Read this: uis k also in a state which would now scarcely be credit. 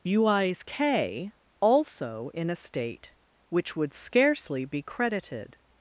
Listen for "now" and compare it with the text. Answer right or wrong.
wrong